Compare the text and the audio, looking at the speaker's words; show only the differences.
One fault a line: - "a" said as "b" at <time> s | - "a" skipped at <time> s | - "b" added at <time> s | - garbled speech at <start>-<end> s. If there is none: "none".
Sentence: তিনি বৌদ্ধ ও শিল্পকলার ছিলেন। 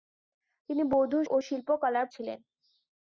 none